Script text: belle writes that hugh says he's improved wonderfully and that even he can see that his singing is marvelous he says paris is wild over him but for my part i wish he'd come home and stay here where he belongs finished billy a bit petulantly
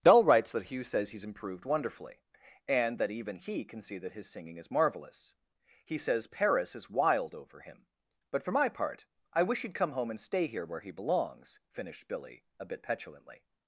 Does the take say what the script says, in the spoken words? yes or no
no